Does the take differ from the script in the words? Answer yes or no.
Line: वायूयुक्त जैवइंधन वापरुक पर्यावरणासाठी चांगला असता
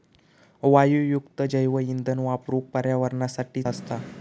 yes